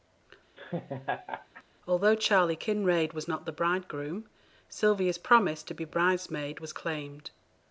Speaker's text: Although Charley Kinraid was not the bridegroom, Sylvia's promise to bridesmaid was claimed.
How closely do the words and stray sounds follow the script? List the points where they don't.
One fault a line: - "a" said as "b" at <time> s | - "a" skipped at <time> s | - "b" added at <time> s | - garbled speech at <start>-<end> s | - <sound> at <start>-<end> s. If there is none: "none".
- laugh at 0.6-1.6 s
- "be" added at 5.7 s